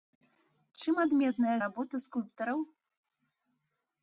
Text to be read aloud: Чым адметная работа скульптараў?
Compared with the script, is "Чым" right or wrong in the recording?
right